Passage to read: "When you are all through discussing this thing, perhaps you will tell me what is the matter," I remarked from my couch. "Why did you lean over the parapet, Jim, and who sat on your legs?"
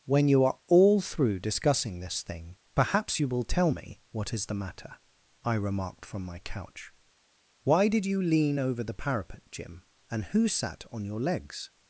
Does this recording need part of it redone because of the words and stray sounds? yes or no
no